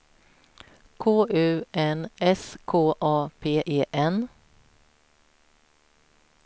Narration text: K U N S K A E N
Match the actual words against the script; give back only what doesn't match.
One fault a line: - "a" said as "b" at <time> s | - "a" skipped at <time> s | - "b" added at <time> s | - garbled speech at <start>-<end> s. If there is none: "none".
- "P" added at 3.4 s